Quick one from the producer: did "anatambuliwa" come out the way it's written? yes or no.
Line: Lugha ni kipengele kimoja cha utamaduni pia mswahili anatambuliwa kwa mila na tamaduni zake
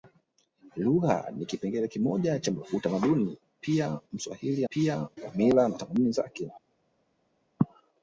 no